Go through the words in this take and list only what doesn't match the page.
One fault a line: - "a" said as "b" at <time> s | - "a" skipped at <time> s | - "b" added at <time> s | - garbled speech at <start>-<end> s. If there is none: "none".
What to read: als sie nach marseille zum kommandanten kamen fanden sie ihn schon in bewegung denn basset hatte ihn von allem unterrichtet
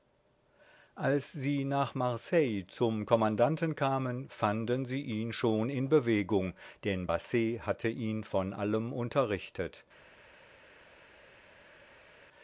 none